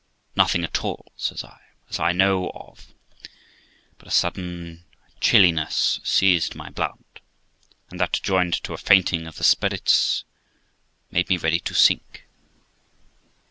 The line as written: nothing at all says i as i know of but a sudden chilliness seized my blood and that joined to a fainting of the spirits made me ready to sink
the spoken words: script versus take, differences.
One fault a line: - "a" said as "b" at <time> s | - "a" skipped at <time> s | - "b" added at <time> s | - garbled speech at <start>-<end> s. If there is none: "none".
none